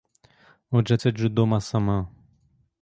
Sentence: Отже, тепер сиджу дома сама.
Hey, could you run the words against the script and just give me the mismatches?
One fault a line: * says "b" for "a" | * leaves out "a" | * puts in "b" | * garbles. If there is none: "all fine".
* leaves out "тепер"